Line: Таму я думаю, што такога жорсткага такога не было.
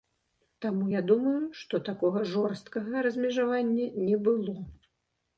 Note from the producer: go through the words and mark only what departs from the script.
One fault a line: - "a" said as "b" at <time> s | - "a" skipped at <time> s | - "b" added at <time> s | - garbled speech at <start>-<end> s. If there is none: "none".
- "такога" said as "размежавання" at 3.1 s